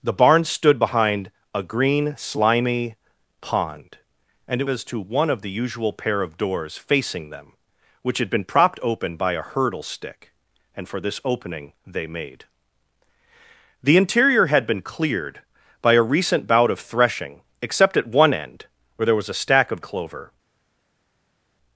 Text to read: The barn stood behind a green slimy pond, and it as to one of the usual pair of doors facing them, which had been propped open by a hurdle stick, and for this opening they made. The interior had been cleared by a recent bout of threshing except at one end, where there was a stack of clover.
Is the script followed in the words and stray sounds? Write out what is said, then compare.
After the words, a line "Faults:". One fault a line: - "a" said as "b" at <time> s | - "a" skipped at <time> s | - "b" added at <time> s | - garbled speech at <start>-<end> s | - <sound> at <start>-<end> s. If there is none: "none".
The barn stood behind a green slimy pond, and it as to one of the usual pair of doors facing them, which had been propped open by a hurdle stick, and for this opening they made. The interior had been cleared by a recent bout of threshing except at one end, where there was a stack of clover.
Faults:
none